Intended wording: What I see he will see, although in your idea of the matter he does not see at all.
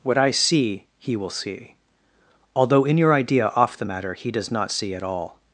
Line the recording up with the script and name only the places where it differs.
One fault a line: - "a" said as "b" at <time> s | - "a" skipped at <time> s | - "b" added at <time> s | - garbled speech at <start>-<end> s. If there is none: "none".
- "of" said as "off" at 3.5 s